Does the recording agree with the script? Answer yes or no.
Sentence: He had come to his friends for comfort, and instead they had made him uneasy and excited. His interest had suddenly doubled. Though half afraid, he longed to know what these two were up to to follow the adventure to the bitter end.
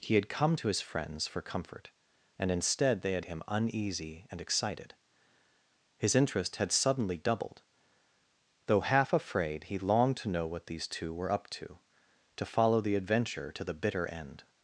no